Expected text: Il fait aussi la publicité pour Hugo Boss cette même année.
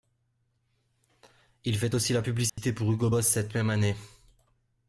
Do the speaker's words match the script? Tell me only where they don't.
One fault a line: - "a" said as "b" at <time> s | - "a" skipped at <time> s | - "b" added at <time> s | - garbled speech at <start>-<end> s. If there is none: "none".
none